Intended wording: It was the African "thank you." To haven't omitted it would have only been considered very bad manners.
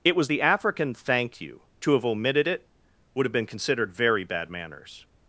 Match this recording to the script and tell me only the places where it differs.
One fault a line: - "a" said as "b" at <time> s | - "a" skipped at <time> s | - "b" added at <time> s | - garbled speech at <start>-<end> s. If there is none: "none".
- "haven't" said as "have" at 1.9 s
- "only" skipped at 3.3 s